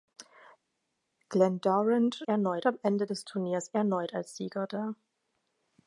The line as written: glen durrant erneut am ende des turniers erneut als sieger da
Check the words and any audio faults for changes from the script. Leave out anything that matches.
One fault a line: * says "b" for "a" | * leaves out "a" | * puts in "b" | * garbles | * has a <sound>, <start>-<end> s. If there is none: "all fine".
all fine